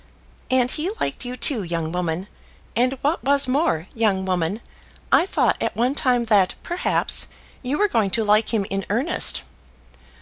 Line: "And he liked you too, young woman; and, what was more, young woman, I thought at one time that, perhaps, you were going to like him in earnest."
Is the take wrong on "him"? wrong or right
right